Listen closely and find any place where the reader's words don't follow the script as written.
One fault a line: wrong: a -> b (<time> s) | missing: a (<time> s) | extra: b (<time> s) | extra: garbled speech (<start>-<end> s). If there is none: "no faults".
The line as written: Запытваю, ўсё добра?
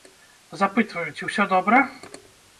extra: ці (1.2 s)